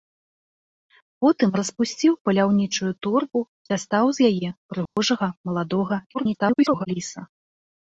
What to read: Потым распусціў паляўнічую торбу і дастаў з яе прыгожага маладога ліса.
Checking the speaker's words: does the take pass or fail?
fail